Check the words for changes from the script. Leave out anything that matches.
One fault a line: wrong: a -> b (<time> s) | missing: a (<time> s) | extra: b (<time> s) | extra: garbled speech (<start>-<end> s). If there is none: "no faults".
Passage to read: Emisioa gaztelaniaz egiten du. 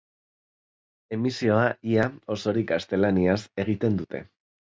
extra: ia osorik (1.9 s)
wrong: du -> dute (4.0 s)